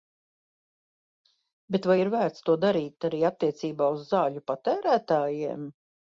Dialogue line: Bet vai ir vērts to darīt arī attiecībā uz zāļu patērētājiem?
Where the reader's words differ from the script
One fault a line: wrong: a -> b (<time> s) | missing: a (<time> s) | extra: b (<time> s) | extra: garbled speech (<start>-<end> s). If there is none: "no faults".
no faults